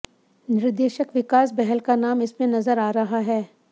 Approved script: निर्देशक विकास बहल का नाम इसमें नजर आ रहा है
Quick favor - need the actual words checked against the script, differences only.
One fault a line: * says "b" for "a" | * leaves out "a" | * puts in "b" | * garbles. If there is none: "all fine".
all fine